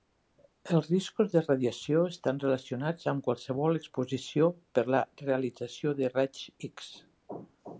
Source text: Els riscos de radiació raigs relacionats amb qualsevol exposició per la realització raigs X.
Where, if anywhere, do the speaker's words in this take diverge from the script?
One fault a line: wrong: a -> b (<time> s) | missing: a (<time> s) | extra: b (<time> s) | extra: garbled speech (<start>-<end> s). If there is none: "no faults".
wrong: raigs -> estan (2.1 s)
extra: de (6.0 s)